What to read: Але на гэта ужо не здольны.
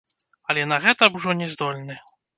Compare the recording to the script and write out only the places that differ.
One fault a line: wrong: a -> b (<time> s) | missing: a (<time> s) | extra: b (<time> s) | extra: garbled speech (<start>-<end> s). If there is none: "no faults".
no faults